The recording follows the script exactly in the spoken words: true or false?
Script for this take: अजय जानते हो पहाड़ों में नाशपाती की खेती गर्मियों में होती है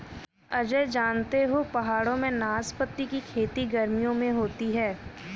true